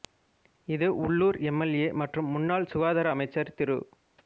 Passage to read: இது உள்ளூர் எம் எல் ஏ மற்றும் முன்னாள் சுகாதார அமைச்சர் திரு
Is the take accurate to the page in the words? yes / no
yes